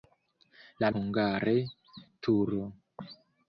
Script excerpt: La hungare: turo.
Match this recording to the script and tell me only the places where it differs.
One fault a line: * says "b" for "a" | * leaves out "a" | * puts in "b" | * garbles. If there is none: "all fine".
all fine